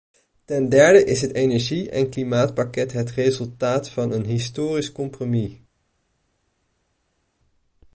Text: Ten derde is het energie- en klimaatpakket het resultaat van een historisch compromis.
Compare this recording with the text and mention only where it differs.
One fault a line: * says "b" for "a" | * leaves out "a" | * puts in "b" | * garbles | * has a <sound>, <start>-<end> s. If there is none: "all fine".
all fine